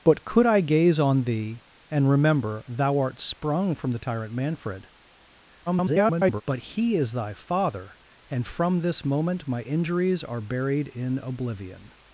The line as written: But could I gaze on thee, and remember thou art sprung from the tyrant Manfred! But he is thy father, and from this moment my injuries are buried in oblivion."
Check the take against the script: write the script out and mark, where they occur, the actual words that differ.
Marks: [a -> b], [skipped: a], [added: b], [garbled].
But could I gaze on thee, and remember thou art sprung from the tyrant Manfred! [garbled] But he is thy father, and from this moment my injuries are buried in oblivion."